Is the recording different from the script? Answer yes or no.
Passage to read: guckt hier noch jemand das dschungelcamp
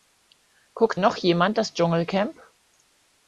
yes